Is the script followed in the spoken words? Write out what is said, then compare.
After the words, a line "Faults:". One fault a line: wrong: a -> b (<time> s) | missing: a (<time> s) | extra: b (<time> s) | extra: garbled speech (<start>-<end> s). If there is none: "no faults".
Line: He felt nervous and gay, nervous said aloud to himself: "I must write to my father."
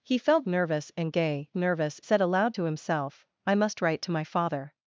He felt nervous and gay, nervous said aloud to himself: "I must write to my father."
Faults:
no faults